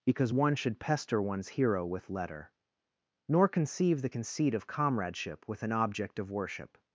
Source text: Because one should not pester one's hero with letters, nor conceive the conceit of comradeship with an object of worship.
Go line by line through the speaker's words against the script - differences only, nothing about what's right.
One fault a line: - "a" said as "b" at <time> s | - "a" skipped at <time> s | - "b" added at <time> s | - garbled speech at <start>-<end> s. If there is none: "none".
- "not" skipped at 0.8 s
- "letters" said as "letter" at 2.1 s